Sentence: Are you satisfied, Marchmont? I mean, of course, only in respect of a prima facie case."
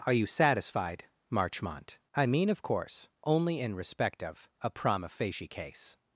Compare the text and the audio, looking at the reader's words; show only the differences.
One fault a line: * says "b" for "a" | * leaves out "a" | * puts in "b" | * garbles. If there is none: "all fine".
all fine